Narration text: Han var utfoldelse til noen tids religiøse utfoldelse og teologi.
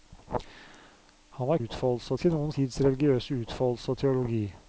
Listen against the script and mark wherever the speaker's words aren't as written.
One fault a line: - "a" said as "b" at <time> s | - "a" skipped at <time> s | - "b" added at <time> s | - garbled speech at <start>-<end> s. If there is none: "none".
none